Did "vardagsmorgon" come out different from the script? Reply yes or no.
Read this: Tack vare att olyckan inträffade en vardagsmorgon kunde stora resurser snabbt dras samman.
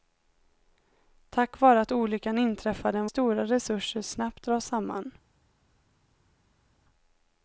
yes